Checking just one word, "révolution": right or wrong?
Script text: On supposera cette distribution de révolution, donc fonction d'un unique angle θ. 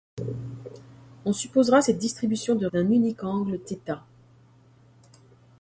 wrong